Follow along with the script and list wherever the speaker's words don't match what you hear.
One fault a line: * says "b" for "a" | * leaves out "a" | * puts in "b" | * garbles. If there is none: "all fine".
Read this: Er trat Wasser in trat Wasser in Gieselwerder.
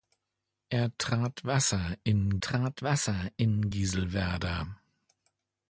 all fine